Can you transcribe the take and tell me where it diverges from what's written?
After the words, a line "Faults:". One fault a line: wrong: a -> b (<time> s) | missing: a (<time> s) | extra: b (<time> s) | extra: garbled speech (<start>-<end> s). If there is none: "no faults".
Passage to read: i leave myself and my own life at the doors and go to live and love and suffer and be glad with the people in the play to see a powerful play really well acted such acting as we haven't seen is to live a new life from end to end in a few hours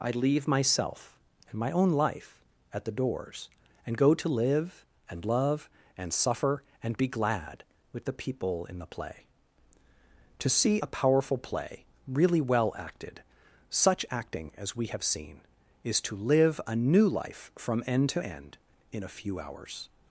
i leave myself and my own life at the doors and go to live and love and suffer and be glad with the people in the play to see a powerful play really well acted such acting as we have seen is to live a new life from end to end in a few hours
Faults:
wrong: haven't -> have (14.9 s)